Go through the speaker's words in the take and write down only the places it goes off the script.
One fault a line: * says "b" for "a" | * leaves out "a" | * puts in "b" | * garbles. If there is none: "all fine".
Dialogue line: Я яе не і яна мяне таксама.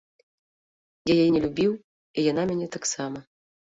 * puts in "любіў"